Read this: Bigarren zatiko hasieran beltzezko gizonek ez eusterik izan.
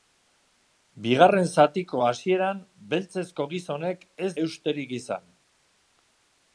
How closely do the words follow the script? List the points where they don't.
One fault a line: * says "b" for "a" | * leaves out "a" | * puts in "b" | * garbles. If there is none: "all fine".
all fine